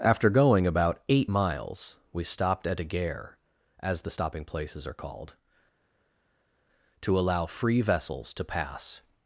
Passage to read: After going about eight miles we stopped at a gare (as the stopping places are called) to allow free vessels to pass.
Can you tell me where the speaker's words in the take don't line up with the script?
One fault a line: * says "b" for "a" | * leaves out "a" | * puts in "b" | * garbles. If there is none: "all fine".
all fine